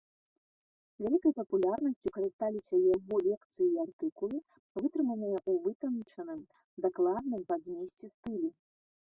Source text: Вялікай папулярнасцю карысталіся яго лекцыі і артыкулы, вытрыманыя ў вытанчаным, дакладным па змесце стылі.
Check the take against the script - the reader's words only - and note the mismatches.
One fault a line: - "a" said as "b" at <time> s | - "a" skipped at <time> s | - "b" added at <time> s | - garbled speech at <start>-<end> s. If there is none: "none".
none